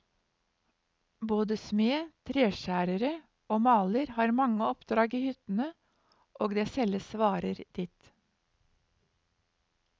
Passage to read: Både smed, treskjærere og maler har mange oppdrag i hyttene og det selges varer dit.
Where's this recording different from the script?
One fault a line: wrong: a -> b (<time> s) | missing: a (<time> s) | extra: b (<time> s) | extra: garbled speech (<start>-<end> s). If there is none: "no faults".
no faults